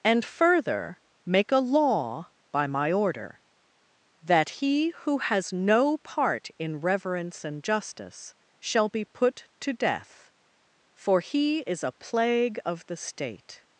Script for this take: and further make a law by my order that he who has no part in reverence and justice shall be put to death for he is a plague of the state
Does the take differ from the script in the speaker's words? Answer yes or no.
no